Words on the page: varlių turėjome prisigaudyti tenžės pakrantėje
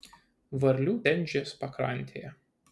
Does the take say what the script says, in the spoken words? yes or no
no